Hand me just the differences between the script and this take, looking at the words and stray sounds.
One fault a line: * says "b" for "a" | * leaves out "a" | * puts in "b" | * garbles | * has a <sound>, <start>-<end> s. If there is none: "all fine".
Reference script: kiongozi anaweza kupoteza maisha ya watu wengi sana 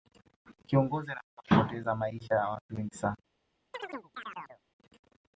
* has a chirp, 3.7-4.6 s